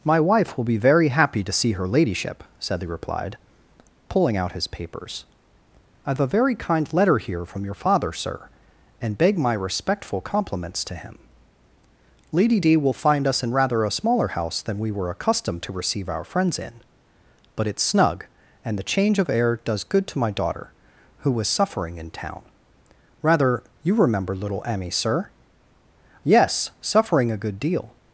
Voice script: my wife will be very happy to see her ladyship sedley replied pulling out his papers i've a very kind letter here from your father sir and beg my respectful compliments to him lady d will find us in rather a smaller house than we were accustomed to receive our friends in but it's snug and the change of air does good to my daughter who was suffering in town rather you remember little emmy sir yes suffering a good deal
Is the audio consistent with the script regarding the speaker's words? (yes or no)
yes